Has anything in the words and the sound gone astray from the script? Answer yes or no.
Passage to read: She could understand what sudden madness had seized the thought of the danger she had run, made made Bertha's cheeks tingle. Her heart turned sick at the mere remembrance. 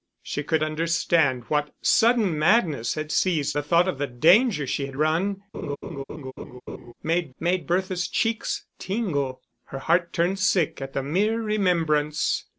yes